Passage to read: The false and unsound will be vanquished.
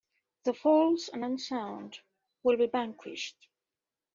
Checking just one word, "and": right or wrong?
right